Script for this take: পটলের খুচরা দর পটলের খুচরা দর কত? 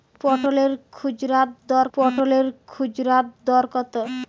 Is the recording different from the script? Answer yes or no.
no